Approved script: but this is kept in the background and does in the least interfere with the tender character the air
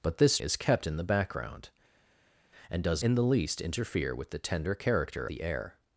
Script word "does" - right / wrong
right